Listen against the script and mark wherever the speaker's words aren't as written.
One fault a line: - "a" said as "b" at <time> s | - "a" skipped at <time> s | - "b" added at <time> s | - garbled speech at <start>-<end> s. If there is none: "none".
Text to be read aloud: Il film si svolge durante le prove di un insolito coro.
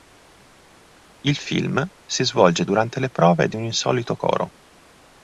none